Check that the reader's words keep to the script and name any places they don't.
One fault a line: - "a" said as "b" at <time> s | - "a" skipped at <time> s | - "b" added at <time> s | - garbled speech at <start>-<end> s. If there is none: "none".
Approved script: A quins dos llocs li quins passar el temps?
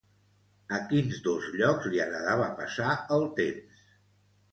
- "quins" said as "agradava" at 2.0 s